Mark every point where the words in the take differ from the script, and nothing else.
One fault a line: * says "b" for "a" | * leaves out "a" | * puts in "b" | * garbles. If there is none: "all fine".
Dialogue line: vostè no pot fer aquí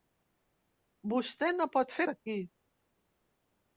all fine